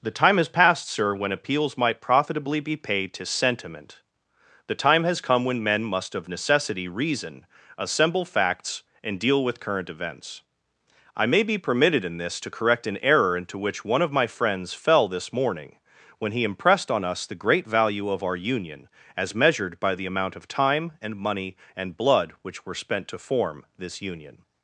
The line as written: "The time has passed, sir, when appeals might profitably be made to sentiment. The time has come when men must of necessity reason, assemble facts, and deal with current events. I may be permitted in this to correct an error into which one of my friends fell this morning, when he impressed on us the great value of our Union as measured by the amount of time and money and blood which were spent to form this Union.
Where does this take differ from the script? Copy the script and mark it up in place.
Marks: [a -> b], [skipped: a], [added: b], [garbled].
"The time has passed, sir, when appeals might profitably be [made -> paid] to sentiment. The time has come when men must of necessity reason, assemble facts, and deal with current events. I may be permitted in this to correct an error into which one of my friends fell this morning, when he impressed on us the great value of our Union as measured by the amount of time and money and blood which were spent to form this Union.